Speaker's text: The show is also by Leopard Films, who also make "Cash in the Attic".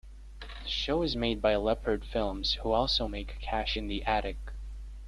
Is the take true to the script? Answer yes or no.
no